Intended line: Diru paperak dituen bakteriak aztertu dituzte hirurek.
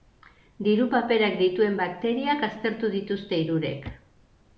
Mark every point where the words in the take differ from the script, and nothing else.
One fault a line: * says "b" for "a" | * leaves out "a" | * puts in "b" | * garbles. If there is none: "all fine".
all fine